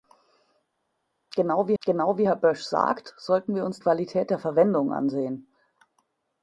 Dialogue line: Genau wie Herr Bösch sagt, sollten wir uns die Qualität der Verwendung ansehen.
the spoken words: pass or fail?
fail